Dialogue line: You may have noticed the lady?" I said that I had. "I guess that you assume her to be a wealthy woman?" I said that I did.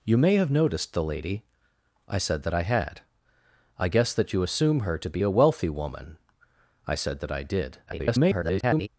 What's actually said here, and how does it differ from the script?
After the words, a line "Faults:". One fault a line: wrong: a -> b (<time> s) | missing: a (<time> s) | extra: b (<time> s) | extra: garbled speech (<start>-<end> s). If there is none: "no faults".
You may have noticed the lady?" I said that I had. "I guess that you assume her to be a wealthy woman?" I said that I did. [garbled]
Faults:
extra: garbled speech (7.9-8.9 s)